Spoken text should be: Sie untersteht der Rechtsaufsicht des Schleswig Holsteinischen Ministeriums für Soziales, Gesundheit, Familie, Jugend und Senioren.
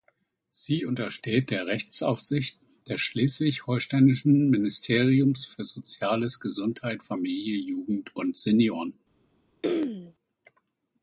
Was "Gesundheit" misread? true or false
false